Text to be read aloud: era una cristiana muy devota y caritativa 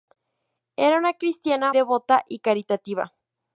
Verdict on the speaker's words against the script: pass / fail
fail